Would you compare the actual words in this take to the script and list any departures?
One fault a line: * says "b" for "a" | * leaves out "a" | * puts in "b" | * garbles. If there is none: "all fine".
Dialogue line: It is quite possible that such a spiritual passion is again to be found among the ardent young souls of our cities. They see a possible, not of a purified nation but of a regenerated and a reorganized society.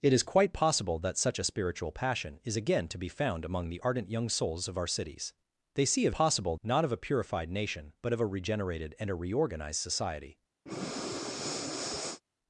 all fine